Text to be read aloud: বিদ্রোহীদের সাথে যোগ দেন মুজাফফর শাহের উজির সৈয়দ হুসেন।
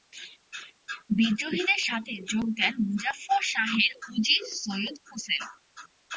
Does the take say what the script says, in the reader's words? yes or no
yes